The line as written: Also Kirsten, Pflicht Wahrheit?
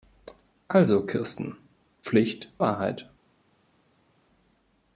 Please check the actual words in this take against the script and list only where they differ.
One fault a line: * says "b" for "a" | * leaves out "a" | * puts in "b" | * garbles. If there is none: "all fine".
all fine